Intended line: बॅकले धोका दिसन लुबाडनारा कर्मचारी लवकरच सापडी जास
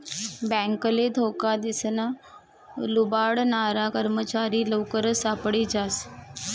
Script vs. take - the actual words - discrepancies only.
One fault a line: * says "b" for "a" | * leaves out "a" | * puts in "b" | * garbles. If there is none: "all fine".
all fine